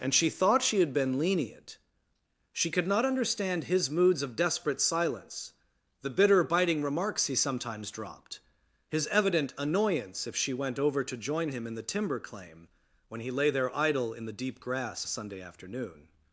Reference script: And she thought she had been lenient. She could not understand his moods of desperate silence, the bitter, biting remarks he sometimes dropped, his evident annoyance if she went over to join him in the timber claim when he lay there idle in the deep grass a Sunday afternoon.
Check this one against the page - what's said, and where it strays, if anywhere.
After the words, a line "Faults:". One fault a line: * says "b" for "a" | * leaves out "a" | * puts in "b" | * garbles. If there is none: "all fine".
And she thought she had been lenient. She could not understand his moods of desperate silence, the bitter, biting remarks he sometimes dropped, his evident annoyance if she went over to join him in the timber claim when he lay there idle in the deep grass a Sunday afternoon.
Faults:
all fine